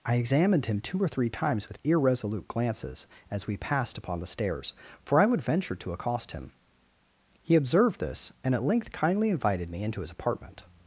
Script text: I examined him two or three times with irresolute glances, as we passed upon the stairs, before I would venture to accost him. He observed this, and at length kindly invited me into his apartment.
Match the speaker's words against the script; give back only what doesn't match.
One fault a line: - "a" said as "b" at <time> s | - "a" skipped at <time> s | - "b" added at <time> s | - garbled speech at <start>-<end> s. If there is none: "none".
- "before" said as "for" at 5.0 s